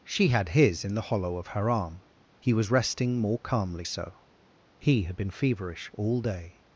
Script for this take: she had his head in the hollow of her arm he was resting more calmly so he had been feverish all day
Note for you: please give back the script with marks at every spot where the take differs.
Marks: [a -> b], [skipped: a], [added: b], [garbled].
she had his [skipped: head] in the hollow of her arm he was resting more calmly so he had been feverish all day